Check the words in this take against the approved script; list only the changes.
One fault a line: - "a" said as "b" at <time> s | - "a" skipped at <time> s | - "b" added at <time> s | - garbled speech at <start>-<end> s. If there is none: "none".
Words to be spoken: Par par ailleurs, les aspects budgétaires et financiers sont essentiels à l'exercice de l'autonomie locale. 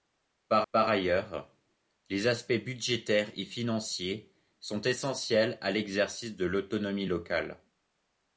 none